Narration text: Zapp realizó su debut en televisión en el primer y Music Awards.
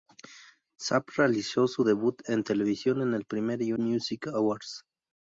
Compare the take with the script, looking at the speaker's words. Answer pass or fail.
pass